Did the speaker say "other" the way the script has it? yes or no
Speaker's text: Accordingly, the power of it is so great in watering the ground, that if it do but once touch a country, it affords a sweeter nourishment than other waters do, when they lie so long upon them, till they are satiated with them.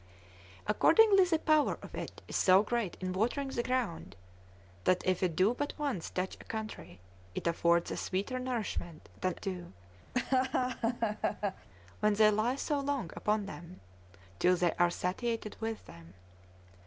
no